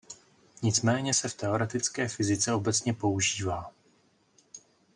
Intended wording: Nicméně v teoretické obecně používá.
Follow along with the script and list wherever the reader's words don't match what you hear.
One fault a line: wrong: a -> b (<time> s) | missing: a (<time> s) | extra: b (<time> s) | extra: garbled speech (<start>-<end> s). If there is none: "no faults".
extra: se (1.1 s)
extra: fyzice (2.1 s)